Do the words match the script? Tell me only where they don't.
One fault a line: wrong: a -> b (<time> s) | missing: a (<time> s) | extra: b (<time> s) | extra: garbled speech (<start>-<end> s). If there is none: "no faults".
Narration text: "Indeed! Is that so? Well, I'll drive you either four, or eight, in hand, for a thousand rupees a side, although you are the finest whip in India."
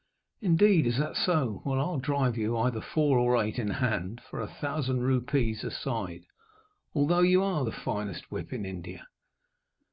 no faults